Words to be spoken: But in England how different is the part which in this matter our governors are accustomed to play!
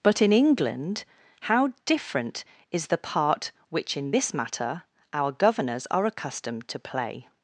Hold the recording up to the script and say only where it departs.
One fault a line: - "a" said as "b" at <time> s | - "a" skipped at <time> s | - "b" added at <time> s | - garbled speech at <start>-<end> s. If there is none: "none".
none